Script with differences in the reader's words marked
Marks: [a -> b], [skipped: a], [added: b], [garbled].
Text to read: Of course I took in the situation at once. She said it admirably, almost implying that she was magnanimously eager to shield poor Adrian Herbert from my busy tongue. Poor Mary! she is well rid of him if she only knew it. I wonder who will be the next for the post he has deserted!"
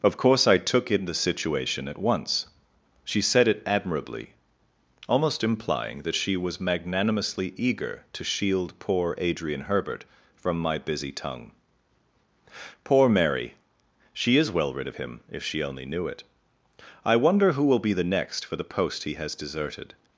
Of course I took in the situation at once. She said it admirably, almost implying that she was magnanimously eager to shield poor Adrian Herbert from my busy tongue. Poor Mary! she is well rid of him if she only knew it. I wonder who will be the next for the post he has deserted!"